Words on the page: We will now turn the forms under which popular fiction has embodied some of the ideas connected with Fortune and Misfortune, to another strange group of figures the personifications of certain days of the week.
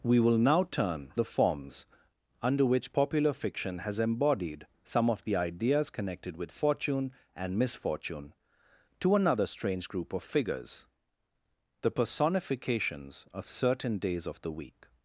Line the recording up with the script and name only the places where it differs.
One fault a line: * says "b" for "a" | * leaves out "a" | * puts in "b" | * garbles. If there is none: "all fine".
all fine